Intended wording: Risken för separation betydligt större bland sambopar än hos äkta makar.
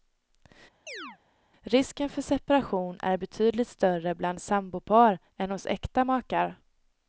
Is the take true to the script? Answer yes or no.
no